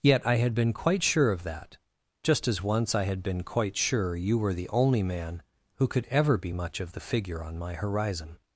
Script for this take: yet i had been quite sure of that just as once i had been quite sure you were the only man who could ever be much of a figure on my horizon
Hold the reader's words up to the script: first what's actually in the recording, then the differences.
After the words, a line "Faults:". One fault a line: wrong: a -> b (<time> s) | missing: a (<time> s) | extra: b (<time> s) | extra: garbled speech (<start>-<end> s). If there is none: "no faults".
yet i had been quite sure of that just as once i had been quite sure you were the only man who could ever be much of the figure on my horizon
Faults:
wrong: a -> the (6.9 s)